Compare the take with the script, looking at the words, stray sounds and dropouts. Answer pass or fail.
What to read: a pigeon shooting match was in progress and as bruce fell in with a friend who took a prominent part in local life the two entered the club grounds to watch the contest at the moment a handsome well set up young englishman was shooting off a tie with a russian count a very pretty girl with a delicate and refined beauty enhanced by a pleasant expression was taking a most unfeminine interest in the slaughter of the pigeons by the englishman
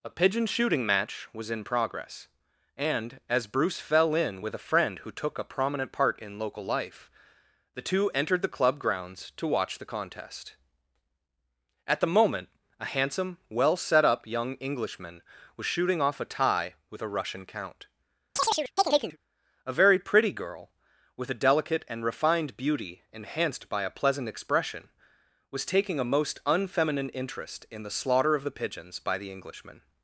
fail